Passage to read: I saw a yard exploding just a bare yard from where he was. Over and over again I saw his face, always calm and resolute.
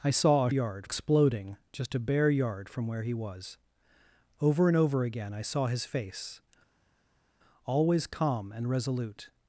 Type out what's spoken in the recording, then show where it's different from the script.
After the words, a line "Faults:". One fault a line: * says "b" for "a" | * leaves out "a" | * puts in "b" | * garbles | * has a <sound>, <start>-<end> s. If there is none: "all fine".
I saw a yard exploding just a bare yard from where he was. Over and over again I saw his face, always calm and resolute.
Faults:
all fine